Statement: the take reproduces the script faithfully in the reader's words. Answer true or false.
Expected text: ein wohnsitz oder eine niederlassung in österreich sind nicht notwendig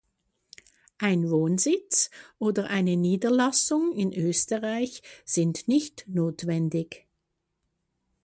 true